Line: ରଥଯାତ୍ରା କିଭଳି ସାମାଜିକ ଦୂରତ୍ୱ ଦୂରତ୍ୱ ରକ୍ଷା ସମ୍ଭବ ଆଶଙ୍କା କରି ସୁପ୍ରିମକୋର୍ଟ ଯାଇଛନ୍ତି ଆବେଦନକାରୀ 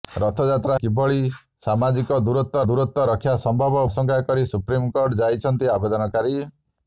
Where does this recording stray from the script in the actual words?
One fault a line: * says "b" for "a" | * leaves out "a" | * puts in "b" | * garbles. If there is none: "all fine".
all fine